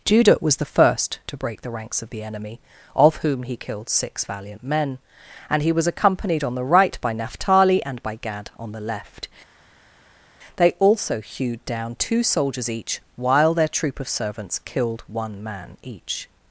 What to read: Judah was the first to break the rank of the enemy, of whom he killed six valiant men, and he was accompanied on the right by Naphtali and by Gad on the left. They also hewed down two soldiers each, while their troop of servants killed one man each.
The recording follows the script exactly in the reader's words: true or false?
false